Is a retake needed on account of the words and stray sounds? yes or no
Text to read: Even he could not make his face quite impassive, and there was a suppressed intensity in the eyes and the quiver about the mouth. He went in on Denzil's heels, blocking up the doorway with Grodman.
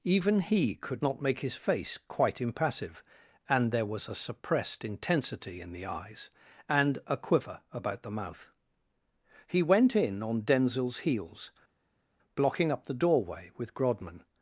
yes